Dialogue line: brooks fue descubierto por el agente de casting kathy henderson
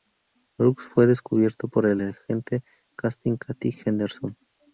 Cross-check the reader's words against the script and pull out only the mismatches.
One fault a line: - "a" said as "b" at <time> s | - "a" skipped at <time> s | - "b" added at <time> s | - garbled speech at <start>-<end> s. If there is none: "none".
none